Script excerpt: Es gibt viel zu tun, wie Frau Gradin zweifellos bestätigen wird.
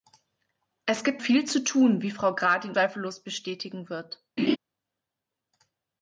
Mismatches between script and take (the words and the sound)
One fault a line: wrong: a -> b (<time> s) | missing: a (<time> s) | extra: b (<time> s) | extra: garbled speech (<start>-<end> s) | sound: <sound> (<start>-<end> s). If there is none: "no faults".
sound: laugh (4.4-4.6 s)